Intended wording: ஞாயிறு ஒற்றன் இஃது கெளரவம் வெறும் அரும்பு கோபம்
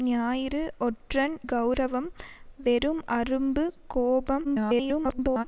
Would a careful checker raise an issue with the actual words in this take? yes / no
yes